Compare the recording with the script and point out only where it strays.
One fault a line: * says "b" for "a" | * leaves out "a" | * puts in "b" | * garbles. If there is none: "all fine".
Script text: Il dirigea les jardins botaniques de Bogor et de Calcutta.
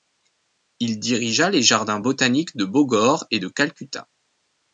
all fine